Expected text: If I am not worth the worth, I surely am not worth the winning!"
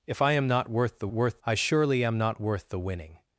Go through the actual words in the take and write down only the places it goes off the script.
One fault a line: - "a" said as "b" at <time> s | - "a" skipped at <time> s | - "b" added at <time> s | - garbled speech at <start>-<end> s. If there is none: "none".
none